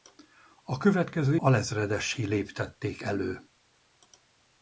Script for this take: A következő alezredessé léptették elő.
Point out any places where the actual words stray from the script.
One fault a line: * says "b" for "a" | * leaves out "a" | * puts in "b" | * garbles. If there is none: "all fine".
all fine